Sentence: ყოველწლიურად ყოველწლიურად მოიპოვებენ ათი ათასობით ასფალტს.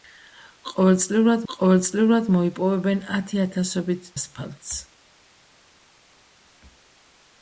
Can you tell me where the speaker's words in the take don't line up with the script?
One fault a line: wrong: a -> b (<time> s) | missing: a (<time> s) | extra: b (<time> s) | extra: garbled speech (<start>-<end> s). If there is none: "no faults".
no faults